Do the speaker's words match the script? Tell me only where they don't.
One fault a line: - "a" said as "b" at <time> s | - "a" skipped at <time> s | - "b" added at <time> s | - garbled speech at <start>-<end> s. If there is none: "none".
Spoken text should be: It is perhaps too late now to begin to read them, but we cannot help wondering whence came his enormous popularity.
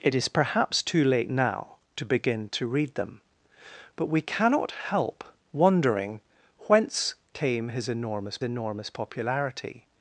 - "enormous" added at 8.4 s